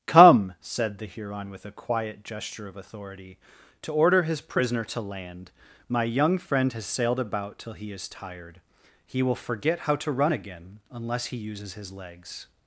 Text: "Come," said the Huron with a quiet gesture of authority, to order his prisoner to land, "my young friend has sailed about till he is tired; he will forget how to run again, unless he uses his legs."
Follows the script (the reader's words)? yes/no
yes